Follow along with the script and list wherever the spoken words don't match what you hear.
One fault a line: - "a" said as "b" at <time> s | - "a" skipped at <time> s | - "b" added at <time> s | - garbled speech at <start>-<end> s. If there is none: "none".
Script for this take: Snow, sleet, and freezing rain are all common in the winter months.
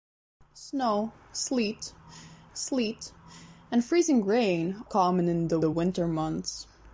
- "sleet" added at 2.5 s
- "are all" skipped at 4.8 s
- "the" added at 5.6 s